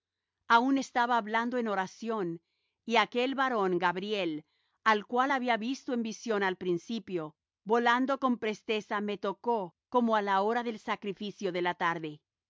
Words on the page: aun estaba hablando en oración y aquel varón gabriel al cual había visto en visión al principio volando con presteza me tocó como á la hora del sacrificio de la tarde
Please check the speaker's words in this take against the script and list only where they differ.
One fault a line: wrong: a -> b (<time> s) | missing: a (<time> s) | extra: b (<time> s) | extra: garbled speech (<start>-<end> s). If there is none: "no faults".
no faults